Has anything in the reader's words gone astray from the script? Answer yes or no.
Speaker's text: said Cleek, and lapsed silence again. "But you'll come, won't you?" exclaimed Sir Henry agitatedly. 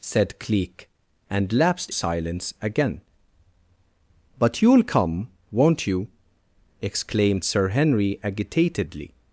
no